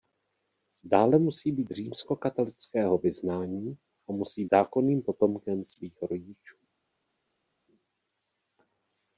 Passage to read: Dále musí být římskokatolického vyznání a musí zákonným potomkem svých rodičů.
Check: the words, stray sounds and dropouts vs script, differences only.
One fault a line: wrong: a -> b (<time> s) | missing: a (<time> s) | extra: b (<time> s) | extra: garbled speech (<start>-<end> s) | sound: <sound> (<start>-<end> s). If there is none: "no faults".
no faults